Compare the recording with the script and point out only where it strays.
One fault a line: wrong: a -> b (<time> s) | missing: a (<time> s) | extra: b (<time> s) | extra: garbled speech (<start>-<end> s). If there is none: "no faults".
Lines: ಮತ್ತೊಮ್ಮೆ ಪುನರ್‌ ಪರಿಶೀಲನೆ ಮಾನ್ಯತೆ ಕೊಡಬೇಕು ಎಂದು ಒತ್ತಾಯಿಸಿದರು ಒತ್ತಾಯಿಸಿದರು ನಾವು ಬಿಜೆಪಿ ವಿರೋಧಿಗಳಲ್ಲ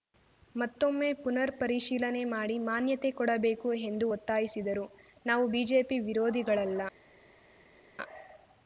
extra: ಮಾಡಿ (2.3 s)
missing: ಒತ್ತಾಯಿಸಿದರು (4.9 s)